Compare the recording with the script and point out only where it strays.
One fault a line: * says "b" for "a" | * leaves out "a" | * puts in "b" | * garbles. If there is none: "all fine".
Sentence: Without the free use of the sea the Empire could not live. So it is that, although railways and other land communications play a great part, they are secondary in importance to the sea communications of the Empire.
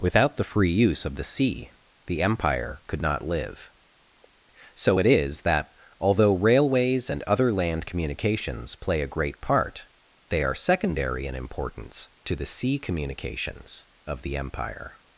all fine